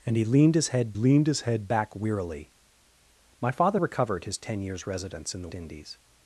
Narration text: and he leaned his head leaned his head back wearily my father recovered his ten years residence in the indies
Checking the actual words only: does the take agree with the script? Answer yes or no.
yes